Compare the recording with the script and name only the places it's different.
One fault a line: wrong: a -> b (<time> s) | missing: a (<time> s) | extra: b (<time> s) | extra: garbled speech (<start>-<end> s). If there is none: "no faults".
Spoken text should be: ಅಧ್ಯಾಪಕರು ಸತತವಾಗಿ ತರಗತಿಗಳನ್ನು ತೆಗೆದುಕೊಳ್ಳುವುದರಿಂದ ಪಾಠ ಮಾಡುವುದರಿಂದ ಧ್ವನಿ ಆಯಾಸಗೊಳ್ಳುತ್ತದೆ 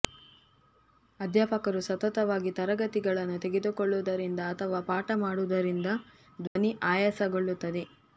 extra: ಅಥವಾ (4.5 s)